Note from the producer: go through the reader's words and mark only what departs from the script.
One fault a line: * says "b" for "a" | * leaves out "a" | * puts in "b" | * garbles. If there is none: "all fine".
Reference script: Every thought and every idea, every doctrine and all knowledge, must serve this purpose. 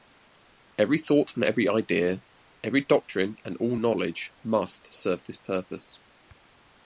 all fine